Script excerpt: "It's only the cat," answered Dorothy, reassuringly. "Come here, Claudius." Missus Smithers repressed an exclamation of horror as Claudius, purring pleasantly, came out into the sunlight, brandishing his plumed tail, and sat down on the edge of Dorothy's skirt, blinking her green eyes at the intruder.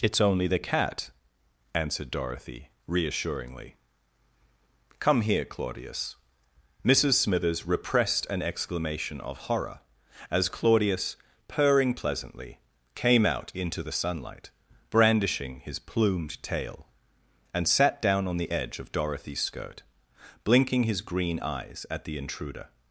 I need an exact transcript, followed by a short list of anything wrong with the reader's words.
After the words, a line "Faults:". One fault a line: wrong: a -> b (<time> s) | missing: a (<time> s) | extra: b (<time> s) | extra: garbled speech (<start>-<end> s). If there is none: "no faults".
"It's only the cat," answered Dorothy, reassuringly. "Come here, Claudius." Missus Smithers repressed an exclamation of horror as Claudius, purring pleasantly, came out into the sunlight, brandishing his plumed tail, and sat down on the edge of Dorothy's skirt, blinking his green eyes at the intruder.
Faults:
wrong: her -> his (20.8 s)